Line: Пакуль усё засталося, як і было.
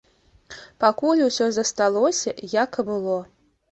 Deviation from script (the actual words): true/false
false